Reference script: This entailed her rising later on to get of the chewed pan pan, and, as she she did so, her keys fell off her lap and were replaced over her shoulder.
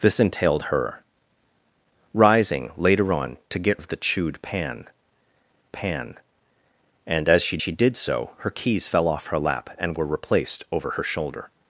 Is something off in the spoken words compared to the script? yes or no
no